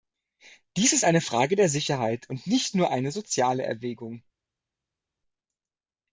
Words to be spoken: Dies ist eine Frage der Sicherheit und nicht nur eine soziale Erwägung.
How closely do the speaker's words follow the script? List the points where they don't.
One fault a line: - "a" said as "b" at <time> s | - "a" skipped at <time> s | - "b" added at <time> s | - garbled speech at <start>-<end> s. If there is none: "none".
none